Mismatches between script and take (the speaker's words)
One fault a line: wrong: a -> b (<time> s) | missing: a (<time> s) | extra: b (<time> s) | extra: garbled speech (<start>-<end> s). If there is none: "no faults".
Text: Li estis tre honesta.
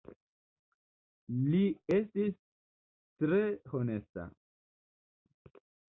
no faults